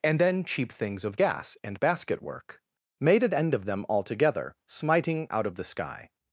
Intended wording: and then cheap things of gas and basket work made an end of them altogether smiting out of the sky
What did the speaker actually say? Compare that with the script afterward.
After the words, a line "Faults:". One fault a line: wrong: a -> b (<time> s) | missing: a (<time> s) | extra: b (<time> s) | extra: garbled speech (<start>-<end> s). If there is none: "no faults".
and then cheap things of gas and basket work made an end of them altogether smiting out of the sky
Faults:
no faults